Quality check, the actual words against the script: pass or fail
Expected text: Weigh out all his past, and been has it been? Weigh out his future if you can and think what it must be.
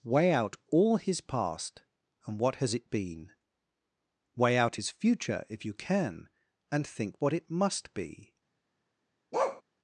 fail